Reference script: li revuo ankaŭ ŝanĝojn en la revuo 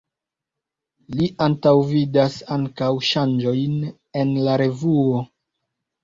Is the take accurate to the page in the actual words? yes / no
no